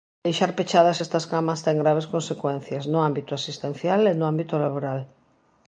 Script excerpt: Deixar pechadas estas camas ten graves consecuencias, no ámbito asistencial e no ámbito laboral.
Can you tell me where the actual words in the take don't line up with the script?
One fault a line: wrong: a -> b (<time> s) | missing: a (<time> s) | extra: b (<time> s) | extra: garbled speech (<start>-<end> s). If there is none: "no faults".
no faults